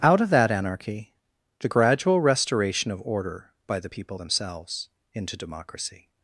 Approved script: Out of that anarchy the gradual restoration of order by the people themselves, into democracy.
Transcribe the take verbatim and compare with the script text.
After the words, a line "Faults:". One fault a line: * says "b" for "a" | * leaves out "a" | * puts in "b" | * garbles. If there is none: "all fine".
Out of that anarchy the gradual restoration of order by the people themselves, into democracy.
Faults:
all fine